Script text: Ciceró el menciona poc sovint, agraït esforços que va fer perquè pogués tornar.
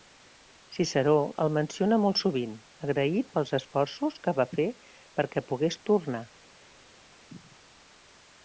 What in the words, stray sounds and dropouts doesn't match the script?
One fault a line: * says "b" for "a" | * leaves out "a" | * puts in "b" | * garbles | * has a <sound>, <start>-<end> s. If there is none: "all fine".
* says "molt" for "poc"
* puts in "pels"